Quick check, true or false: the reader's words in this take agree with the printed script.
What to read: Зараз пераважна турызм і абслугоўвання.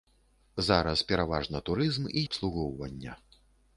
true